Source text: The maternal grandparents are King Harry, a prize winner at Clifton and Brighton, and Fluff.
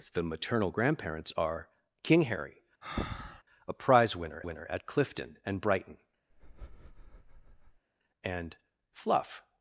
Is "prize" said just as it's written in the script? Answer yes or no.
yes